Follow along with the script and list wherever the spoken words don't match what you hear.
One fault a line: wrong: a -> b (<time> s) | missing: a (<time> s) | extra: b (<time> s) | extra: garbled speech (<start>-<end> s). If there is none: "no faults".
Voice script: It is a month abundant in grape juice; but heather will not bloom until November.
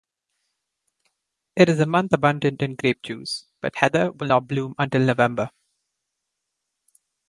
no faults